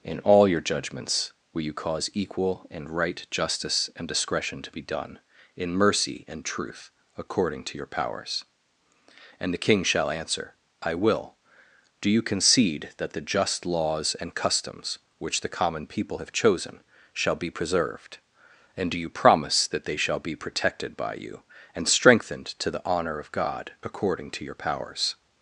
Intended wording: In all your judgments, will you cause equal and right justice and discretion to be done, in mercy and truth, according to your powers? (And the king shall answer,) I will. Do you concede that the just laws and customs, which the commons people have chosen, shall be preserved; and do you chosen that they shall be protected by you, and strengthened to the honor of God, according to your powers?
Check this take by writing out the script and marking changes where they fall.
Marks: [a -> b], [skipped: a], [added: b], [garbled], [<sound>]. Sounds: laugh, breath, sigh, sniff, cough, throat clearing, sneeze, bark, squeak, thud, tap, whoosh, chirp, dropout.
In all your judgments, will you cause equal and right justice and discretion to be done, in mercy and truth, according to your powers? (And the king shall answer,) I will. Do you concede that the just laws and customs, which the [commons -> common] people have chosen, shall be preserved; and do you [chosen -> promise] that they shall be protected by you, and strengthened to the honor of God, according to your powers?